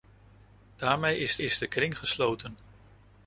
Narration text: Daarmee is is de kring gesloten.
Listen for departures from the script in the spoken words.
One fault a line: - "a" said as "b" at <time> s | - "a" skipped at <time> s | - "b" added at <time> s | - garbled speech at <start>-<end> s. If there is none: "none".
none